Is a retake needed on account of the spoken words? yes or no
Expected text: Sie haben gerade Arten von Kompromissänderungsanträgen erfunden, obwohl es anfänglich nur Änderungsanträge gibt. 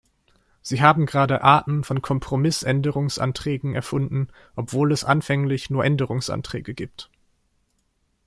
no